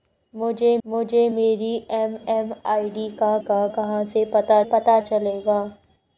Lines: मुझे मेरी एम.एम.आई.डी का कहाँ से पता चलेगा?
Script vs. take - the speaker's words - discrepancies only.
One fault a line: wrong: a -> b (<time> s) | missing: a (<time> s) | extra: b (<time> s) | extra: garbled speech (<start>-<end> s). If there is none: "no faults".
extra: मुझे (0.8 s)
extra: का (3.4 s)
extra: पता (4.6 s)